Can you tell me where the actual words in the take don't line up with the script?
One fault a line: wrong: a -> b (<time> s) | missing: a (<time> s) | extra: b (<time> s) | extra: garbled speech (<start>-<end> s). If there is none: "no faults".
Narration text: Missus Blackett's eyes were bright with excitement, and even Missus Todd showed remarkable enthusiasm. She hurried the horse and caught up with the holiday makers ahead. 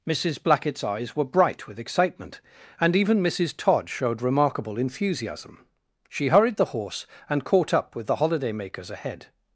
no faults